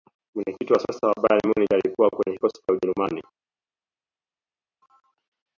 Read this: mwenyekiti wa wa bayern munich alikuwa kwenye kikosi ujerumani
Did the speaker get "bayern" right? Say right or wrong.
right